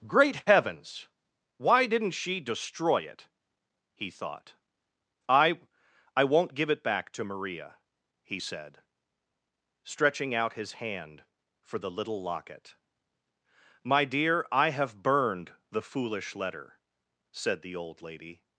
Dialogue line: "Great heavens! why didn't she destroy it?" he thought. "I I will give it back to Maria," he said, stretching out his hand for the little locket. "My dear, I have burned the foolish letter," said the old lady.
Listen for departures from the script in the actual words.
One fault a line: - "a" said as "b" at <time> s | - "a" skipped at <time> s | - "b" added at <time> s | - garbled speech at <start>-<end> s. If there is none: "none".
- "will" said as "won't" at 6.2 s